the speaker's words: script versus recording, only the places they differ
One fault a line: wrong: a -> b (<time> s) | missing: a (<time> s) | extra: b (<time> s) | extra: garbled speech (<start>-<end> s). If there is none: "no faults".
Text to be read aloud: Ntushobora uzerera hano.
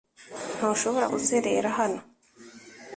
no faults